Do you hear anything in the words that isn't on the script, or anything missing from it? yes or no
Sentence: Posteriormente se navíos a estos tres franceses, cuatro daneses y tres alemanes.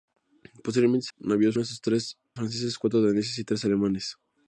no